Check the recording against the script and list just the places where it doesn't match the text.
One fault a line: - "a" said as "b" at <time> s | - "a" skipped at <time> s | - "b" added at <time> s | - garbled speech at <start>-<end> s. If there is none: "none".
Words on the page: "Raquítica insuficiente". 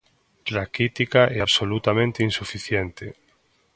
- "e absolutamente" added at 1.3 s